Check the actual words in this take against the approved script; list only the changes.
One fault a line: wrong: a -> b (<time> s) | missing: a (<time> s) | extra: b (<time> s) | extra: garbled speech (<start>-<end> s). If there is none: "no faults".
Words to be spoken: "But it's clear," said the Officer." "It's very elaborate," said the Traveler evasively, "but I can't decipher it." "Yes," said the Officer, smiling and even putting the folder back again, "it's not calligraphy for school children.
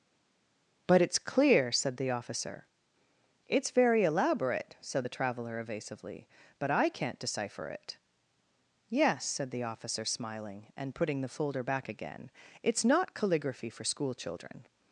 missing: even (10.9 s)